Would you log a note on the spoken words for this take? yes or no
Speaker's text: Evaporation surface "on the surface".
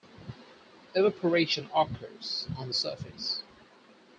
yes